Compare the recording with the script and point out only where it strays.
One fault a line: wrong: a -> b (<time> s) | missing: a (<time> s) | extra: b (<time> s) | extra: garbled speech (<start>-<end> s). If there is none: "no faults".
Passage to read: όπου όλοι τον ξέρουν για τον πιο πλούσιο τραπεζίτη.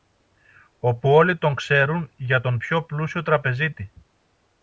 no faults